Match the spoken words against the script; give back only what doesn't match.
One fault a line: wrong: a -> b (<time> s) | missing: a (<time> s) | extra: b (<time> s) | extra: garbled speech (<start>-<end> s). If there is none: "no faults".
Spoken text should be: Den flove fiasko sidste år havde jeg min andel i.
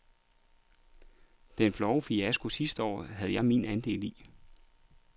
no faults